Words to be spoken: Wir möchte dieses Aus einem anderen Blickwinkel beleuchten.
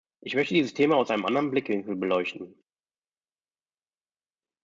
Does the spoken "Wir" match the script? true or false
false